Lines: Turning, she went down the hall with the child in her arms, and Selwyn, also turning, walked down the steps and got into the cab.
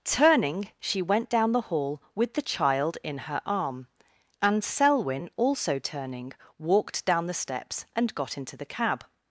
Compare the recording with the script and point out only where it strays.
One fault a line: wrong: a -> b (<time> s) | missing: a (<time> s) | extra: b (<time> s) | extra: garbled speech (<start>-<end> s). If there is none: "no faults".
wrong: arms -> arm (3.5 s)